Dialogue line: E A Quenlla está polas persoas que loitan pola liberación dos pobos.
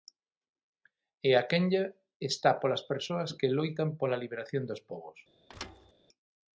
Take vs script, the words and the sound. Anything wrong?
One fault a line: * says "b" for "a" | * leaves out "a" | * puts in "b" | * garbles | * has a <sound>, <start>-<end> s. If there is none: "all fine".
* has a thud, 5.5-5.9 s